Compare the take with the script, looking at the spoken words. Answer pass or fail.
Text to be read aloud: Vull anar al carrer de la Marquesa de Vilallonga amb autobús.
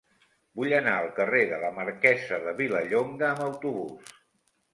pass